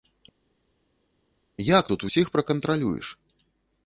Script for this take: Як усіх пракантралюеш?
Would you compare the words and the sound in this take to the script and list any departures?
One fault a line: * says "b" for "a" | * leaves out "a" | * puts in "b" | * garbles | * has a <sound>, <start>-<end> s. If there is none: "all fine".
* puts in "тут"